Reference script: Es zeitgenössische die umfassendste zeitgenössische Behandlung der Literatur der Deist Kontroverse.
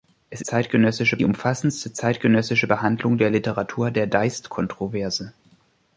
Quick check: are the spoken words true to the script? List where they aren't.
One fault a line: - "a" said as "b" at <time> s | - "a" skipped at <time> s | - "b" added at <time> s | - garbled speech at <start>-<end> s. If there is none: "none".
none